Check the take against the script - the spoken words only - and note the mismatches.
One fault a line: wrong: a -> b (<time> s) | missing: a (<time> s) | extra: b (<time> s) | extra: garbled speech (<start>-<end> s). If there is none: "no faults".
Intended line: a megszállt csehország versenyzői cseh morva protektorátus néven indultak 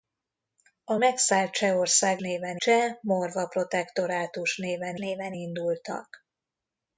wrong: versenyzői -> néven (2.2 s)
extra: néven (5.0 s)